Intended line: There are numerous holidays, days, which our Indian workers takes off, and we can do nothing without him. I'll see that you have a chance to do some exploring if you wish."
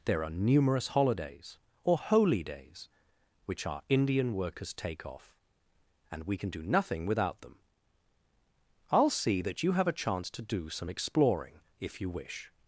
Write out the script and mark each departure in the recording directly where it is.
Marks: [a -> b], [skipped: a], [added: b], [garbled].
There are numerous holidays, [added: or holy] days, which our Indian workers [takes -> take] off, and we can do nothing without [him. -> them] I'll see that you have a chance to do some exploring if you wish."